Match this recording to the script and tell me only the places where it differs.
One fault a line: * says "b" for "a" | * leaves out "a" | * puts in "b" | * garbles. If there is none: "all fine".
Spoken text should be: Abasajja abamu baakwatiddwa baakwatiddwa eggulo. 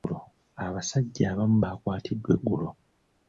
* leaves out "baakwatiddwa"